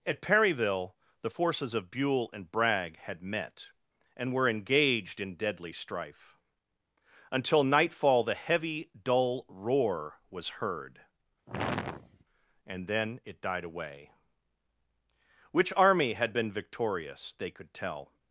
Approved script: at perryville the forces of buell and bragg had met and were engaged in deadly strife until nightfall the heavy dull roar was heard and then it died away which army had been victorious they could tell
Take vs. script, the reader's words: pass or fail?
pass